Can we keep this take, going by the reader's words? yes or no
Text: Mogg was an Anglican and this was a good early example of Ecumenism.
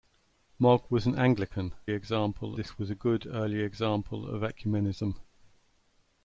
no